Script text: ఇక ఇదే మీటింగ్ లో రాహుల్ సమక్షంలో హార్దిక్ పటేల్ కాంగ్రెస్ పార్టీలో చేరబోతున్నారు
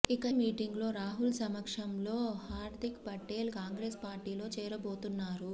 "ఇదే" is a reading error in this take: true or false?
true